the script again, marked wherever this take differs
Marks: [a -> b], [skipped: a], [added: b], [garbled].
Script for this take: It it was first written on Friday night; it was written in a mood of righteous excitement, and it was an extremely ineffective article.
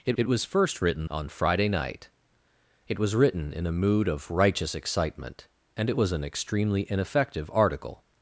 It it was first written on Friday night; it was written in a mood of righteous excitement, and it was an extremely ineffective article.